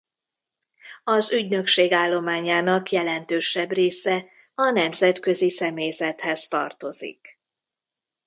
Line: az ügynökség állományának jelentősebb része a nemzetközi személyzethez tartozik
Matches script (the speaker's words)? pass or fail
pass